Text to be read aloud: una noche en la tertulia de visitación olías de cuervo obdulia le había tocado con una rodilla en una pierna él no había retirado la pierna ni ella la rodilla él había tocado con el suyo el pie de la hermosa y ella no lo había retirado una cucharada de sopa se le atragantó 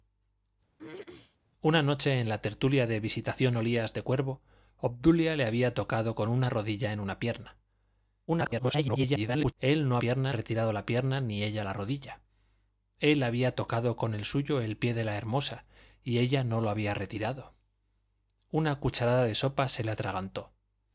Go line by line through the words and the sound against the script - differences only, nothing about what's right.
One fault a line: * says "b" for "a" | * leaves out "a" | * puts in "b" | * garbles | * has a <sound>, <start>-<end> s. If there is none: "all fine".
* has a throat clearing, 0.8-1.4 s
* garbles
* says "pierna" for "había"